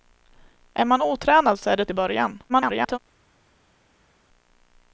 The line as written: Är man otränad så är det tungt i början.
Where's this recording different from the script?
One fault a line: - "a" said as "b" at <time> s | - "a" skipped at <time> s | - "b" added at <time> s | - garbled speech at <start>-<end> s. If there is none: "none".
- "tungt" skipped at 1.9 s
- garbled speech at 2.5-3.0 s